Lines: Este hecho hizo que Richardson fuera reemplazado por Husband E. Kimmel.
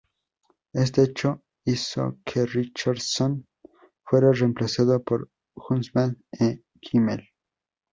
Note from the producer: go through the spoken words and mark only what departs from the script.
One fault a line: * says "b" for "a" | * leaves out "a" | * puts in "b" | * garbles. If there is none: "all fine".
all fine